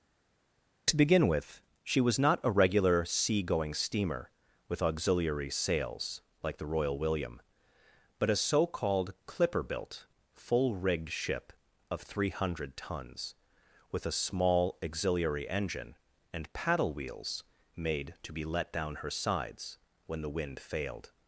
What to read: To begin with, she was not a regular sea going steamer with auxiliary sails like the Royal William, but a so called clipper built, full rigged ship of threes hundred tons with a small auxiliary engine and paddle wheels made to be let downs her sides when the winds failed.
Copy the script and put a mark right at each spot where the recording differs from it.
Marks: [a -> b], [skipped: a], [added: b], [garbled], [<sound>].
To begin with, she was not a regular sea going steamer with auxiliary sails like the Royal William, but a so called clipper built, full rigged ship of [threes -> three] hundred tons with a small auxiliary engine and paddle wheels made to be let [downs -> down] her sides when the [winds -> wind] failed.